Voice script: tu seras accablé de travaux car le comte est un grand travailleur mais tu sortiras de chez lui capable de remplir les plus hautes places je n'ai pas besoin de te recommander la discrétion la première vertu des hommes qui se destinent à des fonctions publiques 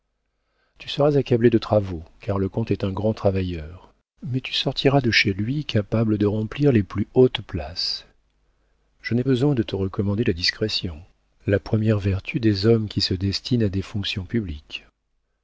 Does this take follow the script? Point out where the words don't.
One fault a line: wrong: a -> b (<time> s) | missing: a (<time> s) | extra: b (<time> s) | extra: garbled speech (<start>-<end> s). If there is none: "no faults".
missing: pas (9.3 s)